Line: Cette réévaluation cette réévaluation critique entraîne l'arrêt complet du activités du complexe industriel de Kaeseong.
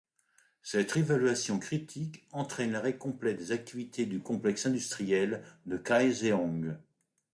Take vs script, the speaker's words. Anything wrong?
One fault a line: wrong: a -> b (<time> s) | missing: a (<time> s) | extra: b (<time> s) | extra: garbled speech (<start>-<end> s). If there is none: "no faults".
missing: cette réévaluation (1.6 s)
wrong: du -> des (3.3 s)